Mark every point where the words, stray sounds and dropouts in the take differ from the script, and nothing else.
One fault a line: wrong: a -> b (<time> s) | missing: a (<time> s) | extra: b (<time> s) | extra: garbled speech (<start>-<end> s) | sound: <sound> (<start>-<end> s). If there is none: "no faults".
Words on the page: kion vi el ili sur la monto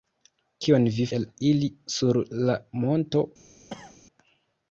sound: cough (3.7-4.0 s)